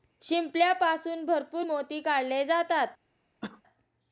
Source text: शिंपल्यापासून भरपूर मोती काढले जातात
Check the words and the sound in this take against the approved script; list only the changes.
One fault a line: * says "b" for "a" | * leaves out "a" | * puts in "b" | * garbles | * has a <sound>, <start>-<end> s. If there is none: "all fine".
* has a cough, 3.4-3.6 s